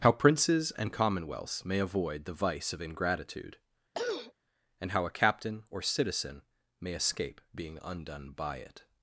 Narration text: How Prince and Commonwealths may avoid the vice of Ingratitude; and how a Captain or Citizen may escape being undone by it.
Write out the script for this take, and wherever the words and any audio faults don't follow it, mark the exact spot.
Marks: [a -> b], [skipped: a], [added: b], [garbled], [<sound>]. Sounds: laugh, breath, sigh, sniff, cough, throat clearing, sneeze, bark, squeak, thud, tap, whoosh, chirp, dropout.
How [Prince -> Princes] and Commonwealths may avoid the vice of Ingratitude; [throat clearing] and how a Captain or Citizen may escape being undone by it.